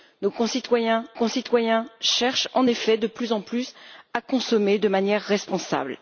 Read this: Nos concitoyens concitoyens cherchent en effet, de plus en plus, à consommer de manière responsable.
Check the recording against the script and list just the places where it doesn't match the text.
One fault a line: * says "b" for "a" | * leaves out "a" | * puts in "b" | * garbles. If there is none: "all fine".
all fine